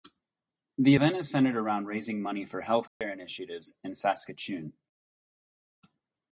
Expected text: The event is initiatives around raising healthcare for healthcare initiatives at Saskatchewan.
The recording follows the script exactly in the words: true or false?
false